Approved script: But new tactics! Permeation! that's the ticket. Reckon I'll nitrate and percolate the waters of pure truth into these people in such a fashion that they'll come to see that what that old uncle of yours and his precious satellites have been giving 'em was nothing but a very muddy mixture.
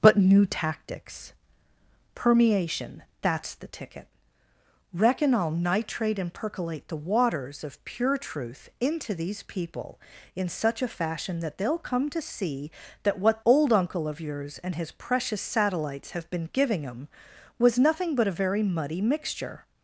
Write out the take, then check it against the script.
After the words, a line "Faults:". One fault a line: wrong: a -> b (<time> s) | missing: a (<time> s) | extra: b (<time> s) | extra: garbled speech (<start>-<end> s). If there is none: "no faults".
But new tactics! Permeation! that's the ticket. Reckon I'll nitrate and percolate the waters of pure truth into these people in such a fashion that they'll come to see that what old uncle of yours and his precious satellites have been giving 'em was nothing but a very muddy mixture.
Faults:
missing: that (13.4 s)